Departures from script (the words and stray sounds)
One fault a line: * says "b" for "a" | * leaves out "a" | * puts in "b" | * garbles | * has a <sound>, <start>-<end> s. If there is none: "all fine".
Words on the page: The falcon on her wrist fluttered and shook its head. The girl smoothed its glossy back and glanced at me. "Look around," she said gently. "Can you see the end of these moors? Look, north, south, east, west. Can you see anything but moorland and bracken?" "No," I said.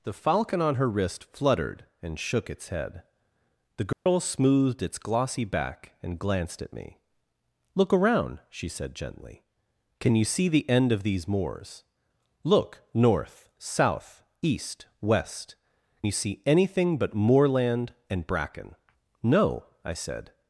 * has a dropout, 3.9-4.1 s
* leaves out "Can"